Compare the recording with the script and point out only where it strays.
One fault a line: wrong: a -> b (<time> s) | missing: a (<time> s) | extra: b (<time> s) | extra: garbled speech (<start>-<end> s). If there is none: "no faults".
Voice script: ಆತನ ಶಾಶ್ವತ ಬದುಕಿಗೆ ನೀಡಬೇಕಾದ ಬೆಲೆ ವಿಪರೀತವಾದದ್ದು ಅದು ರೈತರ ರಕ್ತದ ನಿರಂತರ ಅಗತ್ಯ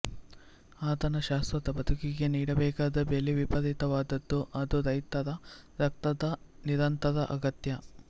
no faults